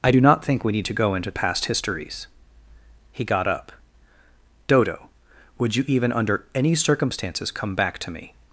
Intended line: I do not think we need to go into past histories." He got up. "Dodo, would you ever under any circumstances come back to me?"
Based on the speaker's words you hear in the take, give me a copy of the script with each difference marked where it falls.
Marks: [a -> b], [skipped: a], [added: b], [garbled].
I do not think we need to go into past histories." He got up. "Dodo, would you [ever -> even] under any circumstances come back to me?"